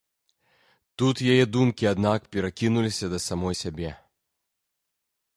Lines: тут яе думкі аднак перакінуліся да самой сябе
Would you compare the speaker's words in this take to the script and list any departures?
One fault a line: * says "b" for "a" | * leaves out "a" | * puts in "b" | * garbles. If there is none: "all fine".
all fine